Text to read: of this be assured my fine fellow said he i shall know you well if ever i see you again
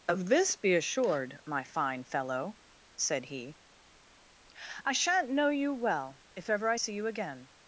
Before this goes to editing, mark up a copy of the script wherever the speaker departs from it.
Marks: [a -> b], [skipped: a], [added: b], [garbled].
of this be assured my fine fellow said he i [shall -> shan't] know you well if ever i see you again